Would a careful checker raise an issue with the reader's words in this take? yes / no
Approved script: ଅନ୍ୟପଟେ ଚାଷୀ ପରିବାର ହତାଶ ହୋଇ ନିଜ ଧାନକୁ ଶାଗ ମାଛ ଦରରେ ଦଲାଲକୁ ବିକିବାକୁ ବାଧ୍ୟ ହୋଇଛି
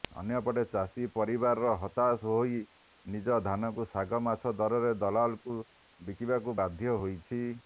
no